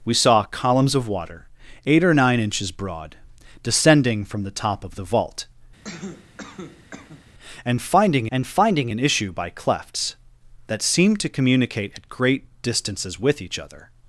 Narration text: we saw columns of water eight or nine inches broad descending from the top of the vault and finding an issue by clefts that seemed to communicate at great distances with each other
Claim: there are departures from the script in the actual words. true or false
true